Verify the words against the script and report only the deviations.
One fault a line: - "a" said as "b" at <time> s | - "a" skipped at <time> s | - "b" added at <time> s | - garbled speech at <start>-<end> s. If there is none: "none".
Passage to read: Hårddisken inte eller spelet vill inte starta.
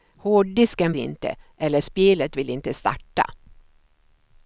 none